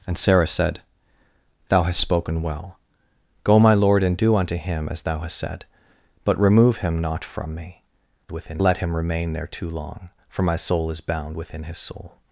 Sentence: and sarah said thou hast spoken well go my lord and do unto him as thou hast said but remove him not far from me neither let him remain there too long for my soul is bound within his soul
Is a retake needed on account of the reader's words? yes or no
yes